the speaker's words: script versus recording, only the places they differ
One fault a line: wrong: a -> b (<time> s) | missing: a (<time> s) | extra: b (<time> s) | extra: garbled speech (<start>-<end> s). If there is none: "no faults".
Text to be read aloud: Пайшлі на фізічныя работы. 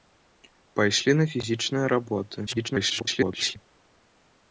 extra: garbled speech (2.5-3.6 s)